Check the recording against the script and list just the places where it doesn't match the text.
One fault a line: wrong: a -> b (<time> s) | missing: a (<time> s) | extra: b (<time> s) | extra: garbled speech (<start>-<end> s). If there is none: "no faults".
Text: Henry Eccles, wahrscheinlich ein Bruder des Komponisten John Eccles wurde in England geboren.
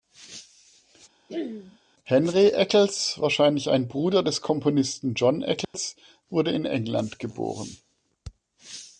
no faults